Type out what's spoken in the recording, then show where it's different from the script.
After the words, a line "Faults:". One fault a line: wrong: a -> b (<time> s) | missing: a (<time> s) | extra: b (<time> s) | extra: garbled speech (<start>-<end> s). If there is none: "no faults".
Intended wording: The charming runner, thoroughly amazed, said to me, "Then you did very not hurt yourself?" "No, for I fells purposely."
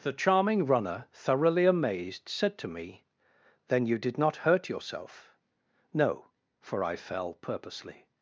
The charming runner, thoroughly amazed, said to me, "Then you did not hurt yourself?" "No, for I fell purposely."
Faults:
missing: very (4.2 s)
wrong: fells -> fell (7.0 s)